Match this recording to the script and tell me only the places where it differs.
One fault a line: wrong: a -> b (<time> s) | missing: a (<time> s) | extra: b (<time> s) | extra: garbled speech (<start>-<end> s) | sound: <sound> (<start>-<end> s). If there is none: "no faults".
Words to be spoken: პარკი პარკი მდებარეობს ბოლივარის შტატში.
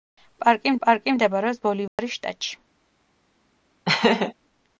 sound: dropout (1.9-2.0 s)
sound: laugh (3.9-4.3 s)